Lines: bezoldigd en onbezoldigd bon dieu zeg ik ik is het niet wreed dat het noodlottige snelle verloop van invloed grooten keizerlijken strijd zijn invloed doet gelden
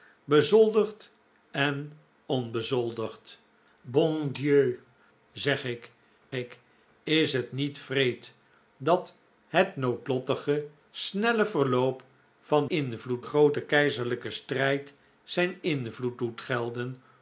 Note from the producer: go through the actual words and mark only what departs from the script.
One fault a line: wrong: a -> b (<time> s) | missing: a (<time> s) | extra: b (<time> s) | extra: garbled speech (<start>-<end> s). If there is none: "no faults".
no faults